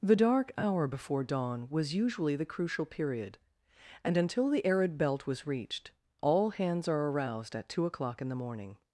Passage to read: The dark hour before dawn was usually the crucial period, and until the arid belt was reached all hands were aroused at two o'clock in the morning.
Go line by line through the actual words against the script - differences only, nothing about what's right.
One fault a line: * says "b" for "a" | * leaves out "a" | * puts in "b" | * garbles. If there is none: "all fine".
* says "are" for "were"